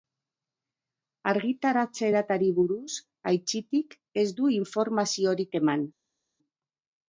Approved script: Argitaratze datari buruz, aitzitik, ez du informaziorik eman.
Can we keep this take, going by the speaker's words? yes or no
yes